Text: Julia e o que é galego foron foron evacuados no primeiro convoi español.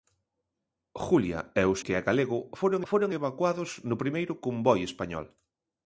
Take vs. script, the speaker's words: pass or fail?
pass